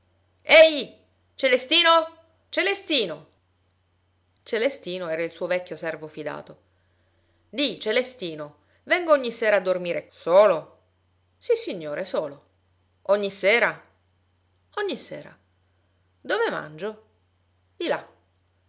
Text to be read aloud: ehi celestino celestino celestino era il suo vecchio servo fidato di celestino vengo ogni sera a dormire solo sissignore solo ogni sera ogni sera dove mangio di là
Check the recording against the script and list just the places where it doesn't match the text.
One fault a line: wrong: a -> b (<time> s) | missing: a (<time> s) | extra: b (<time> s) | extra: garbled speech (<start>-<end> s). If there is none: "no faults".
no faults